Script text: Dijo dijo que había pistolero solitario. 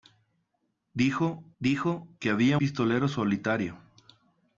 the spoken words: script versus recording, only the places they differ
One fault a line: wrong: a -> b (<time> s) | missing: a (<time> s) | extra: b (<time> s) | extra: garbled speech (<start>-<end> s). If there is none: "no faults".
no faults